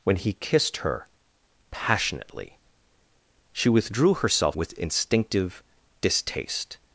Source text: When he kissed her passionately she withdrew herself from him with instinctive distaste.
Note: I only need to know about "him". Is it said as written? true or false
false